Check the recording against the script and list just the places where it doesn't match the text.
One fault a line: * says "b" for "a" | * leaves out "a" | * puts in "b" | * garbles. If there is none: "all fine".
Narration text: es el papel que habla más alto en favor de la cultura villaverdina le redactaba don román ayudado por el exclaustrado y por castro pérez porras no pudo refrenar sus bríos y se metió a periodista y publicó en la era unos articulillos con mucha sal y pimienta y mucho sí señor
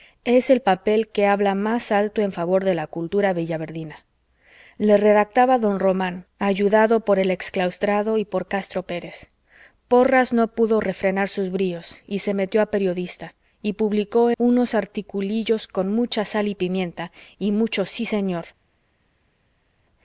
* leaves out "en la era"